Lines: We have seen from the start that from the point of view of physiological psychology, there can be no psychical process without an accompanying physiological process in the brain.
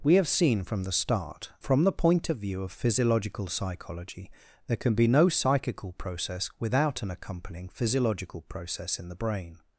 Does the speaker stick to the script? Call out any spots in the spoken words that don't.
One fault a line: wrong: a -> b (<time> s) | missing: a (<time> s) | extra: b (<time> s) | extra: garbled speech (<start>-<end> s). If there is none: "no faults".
missing: that (1.5 s)